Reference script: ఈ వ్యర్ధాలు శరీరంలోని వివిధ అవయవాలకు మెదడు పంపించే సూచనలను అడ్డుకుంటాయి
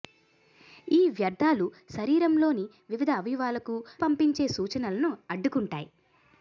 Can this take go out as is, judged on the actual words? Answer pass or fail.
fail